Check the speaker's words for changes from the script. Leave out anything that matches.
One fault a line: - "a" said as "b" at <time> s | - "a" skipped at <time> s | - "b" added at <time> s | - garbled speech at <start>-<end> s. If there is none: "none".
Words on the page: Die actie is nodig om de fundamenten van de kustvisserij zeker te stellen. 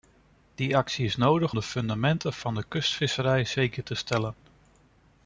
- "om" skipped at 1.6 s